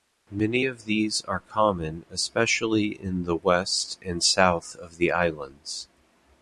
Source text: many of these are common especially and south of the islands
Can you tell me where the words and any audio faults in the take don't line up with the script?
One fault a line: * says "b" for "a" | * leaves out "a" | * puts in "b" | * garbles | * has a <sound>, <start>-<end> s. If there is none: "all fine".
* puts in "in the west"